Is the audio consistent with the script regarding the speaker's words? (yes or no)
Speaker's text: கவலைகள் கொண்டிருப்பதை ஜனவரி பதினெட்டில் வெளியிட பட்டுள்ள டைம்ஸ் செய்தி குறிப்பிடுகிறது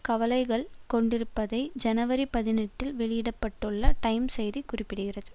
yes